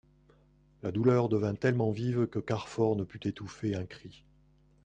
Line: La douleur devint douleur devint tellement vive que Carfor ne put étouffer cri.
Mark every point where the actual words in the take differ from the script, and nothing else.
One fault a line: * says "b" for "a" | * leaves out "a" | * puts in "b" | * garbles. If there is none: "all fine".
* leaves out "douleur devint"
* puts in "un"